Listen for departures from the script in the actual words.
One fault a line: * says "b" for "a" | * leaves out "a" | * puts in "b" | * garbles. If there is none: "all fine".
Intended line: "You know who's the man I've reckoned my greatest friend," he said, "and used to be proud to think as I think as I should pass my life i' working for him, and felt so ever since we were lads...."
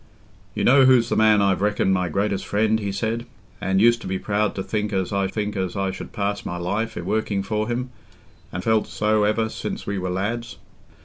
all fine